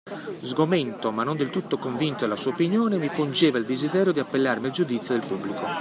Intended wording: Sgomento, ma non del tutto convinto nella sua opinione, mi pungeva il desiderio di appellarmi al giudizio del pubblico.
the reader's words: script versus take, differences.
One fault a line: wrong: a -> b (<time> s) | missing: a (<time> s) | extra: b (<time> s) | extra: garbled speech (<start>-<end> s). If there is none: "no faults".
wrong: nella -> della (2.2 s)